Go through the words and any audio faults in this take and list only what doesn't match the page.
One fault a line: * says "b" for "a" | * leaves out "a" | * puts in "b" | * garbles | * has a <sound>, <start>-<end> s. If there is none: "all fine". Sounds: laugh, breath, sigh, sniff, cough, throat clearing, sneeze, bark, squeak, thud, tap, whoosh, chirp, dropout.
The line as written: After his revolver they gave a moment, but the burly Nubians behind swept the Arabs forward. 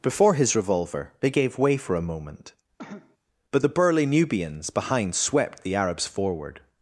* says "Before" for "After"
* puts in "way for"
* has a cough, 2.8-3.2 s